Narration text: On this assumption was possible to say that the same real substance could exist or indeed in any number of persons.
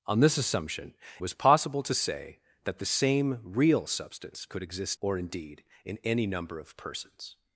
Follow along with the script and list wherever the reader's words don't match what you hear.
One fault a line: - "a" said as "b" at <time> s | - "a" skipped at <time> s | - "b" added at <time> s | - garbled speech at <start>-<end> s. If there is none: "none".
none